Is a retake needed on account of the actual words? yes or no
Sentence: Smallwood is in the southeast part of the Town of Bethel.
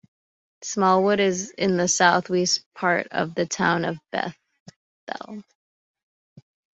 no